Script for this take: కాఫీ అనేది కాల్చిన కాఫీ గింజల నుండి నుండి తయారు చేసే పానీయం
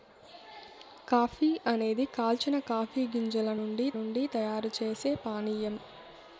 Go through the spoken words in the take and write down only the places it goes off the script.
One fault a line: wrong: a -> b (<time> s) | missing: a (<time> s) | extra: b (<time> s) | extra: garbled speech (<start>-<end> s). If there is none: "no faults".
no faults